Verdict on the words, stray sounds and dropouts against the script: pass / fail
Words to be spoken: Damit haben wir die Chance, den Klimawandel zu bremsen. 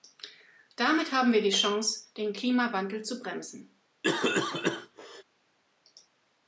fail